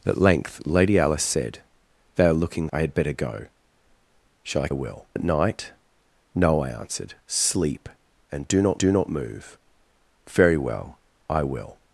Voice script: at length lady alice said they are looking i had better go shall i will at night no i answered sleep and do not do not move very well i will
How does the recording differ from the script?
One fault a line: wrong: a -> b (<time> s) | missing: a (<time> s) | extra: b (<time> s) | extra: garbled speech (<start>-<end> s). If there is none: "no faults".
no faults